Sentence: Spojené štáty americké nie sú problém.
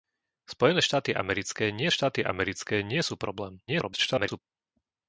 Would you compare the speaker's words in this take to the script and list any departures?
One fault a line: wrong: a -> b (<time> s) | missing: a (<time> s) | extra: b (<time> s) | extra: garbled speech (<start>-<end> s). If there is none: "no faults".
extra: štáty americké nie (1.9 s)
extra: garbled speech (3.7-4.4 s)